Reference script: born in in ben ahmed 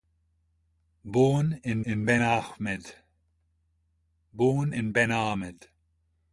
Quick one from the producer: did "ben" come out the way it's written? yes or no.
yes